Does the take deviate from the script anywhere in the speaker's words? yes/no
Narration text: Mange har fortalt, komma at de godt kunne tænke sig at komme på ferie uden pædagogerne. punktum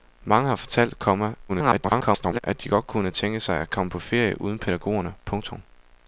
yes